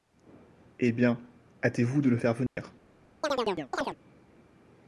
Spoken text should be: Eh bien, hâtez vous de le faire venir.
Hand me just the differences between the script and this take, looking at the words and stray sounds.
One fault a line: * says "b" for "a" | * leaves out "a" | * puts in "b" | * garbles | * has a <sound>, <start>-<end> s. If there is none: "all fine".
* has a dropout, 2.5-2.6 s
* has a chirp, 3.2-4.0 s